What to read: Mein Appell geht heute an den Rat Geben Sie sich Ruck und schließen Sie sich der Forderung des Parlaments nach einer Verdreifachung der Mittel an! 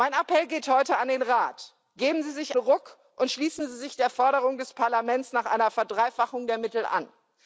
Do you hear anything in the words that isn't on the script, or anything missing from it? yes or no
no